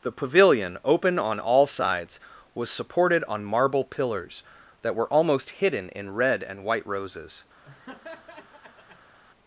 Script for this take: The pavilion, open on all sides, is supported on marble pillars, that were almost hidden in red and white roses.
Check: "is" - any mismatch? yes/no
yes